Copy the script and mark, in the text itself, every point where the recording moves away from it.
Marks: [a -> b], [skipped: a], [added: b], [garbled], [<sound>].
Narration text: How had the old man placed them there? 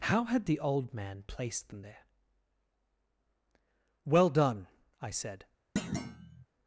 How had the old man placed them there? [added: Well done I said] [thud]